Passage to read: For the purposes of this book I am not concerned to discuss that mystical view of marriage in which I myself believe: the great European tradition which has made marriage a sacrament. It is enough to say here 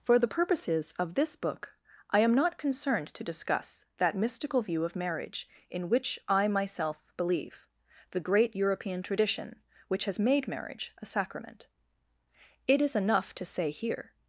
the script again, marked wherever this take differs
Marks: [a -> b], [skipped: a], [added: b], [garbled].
For the purposes of this book I am not concerned to discuss that mystical view of marriage in which I myself believe: the great European tradition which has made marriage a sacrament. It is enough to say here